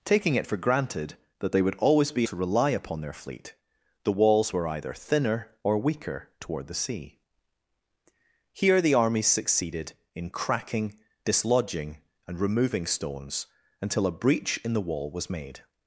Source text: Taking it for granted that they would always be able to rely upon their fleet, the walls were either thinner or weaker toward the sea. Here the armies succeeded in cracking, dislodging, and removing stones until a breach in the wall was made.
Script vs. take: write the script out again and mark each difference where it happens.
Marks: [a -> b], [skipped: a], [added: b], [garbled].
Taking it for granted that they would always be [skipped: able] to rely upon their fleet, the walls were either thinner or weaker toward the sea. Here the armies succeeded in cracking, dislodging, and removing stones until a breach in the wall was made.